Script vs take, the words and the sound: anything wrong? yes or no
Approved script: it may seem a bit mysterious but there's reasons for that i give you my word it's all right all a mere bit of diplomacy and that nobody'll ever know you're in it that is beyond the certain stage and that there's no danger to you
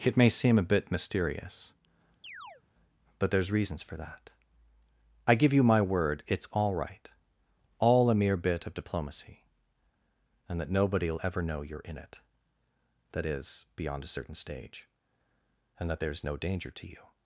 yes